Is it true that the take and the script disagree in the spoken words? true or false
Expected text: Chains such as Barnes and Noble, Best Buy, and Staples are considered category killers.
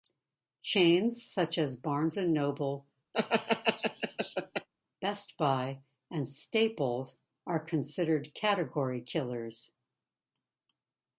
false